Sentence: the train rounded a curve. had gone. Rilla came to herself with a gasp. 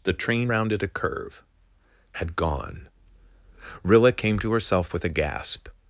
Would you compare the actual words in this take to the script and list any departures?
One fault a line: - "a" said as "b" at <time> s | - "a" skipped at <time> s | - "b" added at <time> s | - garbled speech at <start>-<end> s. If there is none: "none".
none